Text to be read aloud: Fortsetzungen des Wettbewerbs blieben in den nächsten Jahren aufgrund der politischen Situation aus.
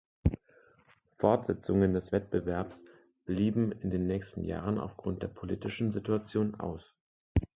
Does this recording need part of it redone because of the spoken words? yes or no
no